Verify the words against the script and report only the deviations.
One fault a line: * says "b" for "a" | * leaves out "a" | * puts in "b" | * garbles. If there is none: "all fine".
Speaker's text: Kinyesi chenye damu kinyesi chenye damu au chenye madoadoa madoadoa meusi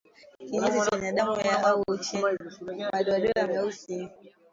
* leaves out "kinyesi chenye damu"
* leaves out "madoadoa"